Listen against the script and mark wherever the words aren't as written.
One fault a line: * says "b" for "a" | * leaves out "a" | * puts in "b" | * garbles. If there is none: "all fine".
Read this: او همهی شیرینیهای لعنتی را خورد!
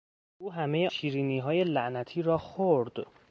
all fine